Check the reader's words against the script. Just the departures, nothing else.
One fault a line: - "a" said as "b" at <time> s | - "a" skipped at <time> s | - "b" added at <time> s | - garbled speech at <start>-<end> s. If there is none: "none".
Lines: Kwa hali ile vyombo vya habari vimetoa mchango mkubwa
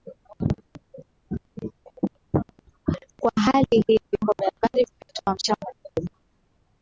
- "ile" said as "hii" at 3.9 s